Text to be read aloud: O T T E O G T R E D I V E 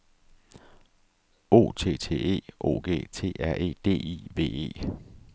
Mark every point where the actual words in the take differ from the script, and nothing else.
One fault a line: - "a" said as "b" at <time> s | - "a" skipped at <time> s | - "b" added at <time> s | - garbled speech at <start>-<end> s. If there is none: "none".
none